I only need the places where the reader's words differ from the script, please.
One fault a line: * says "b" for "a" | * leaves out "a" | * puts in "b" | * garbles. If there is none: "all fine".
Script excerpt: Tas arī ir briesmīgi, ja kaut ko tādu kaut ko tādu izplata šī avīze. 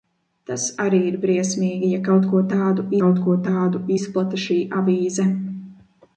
all fine